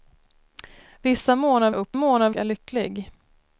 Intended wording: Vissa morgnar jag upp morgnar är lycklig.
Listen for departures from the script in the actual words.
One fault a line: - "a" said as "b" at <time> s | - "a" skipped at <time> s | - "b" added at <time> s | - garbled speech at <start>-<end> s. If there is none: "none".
none